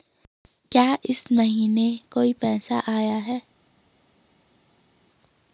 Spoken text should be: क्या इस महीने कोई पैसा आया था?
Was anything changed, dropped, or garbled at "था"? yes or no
yes